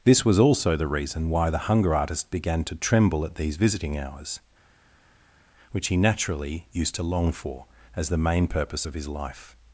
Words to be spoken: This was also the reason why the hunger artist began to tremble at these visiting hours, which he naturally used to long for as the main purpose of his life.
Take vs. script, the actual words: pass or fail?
pass